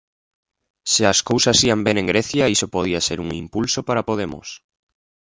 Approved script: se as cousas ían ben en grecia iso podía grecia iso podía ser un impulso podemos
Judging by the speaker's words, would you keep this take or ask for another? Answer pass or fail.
fail